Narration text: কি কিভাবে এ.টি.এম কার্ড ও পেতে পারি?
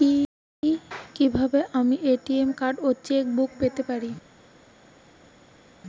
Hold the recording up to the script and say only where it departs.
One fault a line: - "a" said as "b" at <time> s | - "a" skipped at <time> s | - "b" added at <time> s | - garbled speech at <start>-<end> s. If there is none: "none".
- "আমি" added at 1.7 s
- "চেক বুক" added at 3.0 s